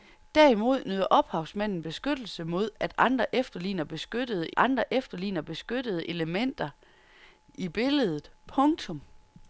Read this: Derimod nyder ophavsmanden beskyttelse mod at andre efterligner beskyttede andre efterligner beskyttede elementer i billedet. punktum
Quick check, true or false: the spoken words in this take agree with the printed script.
true